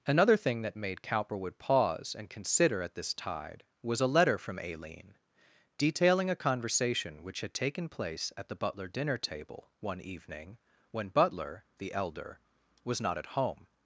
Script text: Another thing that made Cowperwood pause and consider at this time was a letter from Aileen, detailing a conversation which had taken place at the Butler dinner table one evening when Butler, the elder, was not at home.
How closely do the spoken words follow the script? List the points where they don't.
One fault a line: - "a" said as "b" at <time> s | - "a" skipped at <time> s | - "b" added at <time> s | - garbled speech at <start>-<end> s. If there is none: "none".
- "time" said as "tide" at 3.1 s